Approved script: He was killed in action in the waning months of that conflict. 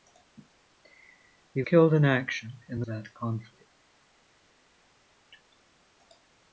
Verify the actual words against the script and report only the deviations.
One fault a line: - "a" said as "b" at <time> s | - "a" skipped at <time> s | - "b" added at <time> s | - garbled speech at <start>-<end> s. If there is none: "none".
- "was" skipped at 1.6 s
- "waning months of" skipped at 2.9 s